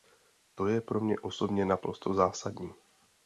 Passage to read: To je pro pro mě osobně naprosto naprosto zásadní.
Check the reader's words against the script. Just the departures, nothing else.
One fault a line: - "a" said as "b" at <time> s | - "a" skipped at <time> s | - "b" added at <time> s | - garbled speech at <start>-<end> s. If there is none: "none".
- "pro" skipped at 1.0 s
- "naprosto" skipped at 2.1 s